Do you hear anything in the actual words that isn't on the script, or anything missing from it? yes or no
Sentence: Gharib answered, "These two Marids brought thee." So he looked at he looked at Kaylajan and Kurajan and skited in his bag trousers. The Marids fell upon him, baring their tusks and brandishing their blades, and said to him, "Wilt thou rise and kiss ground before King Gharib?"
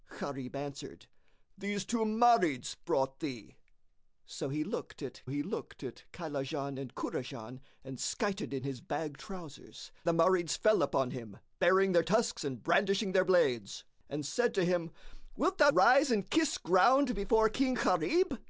no